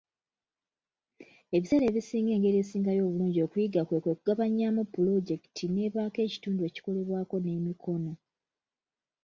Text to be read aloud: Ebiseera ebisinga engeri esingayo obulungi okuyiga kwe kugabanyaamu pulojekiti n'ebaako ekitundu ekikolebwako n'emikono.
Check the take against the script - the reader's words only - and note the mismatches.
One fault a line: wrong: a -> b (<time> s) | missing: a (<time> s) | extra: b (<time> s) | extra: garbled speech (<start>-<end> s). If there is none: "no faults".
extra: kwe (4.0 s)